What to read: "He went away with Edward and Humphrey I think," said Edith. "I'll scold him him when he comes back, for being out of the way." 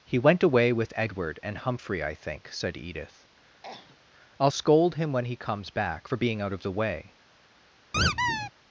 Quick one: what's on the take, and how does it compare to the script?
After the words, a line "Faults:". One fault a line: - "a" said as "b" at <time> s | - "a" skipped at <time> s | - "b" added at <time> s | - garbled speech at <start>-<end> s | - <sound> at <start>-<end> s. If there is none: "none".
"He went away with Edward and Humphrey I think," said Edith. "I'll scold him when he comes back, for being out of the way."
Faults:
- cough at 3.6-4.0 s
- "him" skipped at 5.1 s
- squeak at 7.9-8.5 s